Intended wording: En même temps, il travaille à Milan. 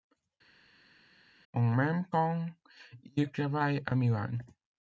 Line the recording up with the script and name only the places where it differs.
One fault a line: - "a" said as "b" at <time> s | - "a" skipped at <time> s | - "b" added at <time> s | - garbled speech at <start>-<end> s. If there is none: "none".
none